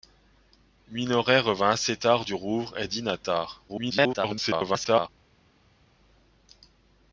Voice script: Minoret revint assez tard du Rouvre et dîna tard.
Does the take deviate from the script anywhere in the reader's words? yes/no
yes